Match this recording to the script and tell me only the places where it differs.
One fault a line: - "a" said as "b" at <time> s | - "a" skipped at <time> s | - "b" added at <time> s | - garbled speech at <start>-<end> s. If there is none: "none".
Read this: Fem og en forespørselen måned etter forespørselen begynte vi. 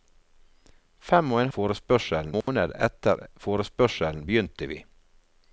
none